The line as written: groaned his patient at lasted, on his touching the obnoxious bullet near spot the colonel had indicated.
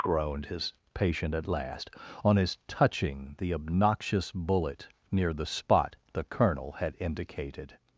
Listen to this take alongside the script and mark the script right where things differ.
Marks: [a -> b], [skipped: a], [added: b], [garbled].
groaned his patient at [lasted, -> last] on his touching the obnoxious bullet near [added: the] spot the colonel had indicated.